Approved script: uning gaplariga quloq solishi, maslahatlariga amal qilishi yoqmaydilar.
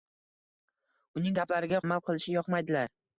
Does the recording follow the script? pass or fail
fail